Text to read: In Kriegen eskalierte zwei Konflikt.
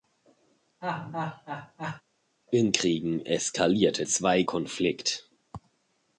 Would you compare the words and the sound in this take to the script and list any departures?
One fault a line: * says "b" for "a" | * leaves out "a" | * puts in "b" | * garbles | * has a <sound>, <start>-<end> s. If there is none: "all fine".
* has a laugh, 0.8-2.0 s